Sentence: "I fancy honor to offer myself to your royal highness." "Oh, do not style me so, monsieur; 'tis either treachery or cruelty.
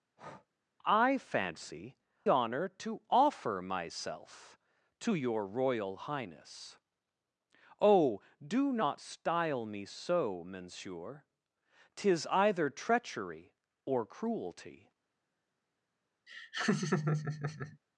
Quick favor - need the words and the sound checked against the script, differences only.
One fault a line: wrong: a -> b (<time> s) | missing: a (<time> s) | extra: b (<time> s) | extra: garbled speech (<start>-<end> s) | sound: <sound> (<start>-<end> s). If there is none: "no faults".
sound: breath (0.2-0.5 s)
sound: laugh (16.3-17.8 s)